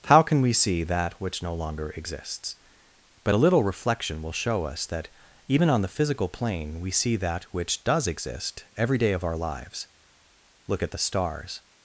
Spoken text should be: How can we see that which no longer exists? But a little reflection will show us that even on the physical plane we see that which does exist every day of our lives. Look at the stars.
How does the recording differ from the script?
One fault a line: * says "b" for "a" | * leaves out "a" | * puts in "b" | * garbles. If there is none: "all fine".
all fine